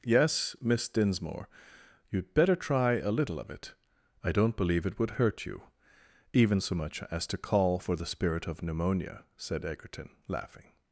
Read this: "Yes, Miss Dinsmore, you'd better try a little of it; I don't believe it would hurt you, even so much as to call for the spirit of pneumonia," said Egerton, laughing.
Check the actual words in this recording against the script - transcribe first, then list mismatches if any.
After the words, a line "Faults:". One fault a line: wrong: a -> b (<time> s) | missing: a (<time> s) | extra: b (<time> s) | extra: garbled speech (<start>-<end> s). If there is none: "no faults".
"Yes, Miss Dinsmore, you'd better try a little of it; I don't believe it would hurt you, even so much as to call for the spirit of pneumonia," said Egerton, laughing.
Faults:
no faults